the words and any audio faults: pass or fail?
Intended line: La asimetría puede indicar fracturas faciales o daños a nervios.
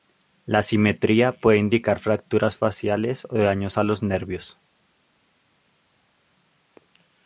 fail